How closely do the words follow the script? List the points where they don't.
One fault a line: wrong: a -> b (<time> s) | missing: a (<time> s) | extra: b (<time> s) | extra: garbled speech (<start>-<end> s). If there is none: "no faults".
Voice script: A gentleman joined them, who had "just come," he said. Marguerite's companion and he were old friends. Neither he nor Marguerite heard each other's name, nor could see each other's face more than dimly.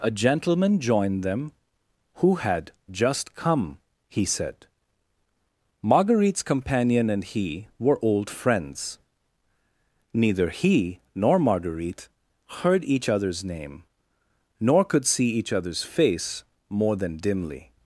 no faults